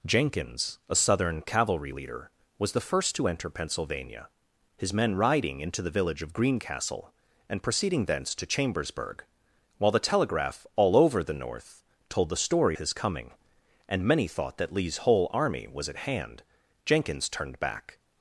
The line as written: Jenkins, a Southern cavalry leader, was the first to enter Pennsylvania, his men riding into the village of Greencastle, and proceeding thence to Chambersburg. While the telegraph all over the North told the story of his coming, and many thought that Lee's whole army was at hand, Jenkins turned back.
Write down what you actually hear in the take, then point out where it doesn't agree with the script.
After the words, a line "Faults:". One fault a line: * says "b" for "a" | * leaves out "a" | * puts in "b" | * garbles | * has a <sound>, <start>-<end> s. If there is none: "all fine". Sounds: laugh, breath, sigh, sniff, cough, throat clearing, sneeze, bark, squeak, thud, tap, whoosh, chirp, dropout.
Jenkins, a Southern cavalry leader, was the first to enter Pennsylvania, his men riding into the village of Greencastle, and proceeding thence to Chambersburg. While the telegraph all over the North told the story his coming, and many thought that Lee's whole army was at hand, Jenkins turned back.
Faults:
* leaves out "of"